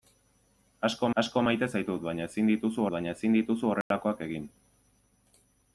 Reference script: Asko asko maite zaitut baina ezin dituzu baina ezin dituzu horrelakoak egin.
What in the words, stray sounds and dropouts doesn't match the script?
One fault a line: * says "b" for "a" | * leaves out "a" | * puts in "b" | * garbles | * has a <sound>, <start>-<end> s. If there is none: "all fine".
* has a dropout, 3.8-3.9 s